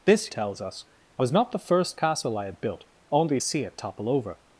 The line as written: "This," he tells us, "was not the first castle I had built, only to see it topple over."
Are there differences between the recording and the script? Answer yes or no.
yes